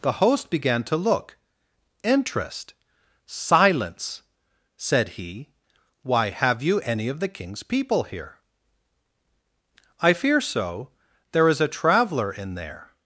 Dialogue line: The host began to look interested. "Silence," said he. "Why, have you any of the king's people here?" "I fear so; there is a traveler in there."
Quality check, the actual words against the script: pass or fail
fail